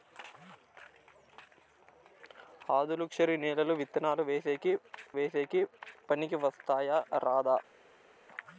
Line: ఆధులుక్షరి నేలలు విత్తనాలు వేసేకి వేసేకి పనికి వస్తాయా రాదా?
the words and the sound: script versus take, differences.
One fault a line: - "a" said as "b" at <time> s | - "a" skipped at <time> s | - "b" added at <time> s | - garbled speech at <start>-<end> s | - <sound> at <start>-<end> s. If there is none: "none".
none